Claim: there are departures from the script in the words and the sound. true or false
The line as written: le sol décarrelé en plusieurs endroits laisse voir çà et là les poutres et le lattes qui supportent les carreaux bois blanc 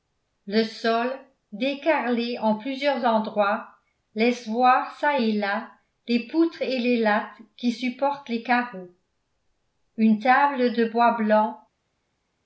true